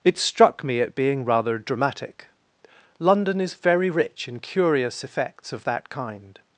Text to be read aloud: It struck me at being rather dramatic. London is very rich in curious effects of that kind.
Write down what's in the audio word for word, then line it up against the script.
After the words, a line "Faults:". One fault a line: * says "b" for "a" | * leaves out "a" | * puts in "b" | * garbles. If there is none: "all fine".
It struck me at being rather dramatic. London is very rich in curious effects of that kind.
Faults:
all fine